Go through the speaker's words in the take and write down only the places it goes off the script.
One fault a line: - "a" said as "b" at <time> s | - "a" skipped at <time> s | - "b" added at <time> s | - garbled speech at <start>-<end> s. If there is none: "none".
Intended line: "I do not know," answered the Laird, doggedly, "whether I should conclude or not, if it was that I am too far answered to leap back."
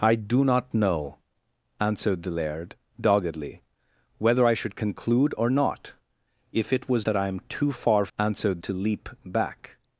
none